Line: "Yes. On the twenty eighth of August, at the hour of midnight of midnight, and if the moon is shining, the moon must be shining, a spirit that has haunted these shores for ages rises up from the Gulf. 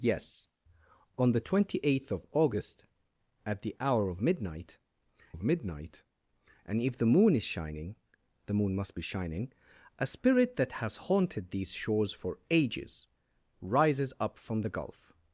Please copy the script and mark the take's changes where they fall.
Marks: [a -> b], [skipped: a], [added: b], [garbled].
"Yes. On the twenty eighth of August, at the hour of midnight of midnight, and if the moon is shining, the moon must be shining, a spirit that has haunted these shores for ages rises up from the Gulf.